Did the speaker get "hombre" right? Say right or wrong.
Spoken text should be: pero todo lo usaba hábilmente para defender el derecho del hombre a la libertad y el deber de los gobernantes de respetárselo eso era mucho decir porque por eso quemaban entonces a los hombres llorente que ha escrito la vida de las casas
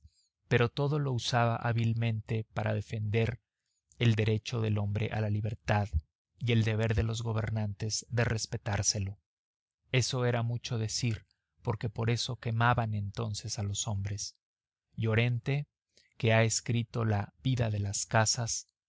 right